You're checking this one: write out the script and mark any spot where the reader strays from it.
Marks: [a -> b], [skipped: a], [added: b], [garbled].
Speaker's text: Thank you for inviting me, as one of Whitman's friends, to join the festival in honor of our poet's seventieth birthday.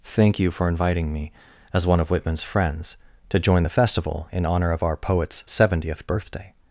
Thank you for inviting me, as one of Whitman's friends, to join the festival in honor of our poet's seventieth birthday.